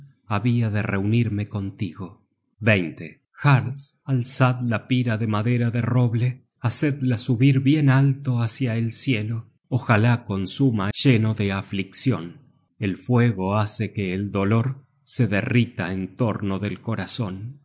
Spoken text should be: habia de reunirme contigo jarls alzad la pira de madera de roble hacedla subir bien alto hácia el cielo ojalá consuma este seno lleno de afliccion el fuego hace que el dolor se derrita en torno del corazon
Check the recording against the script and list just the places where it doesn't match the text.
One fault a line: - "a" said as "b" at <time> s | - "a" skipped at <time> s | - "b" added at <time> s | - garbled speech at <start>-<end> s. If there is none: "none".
- "este seno" skipped at 10.9 s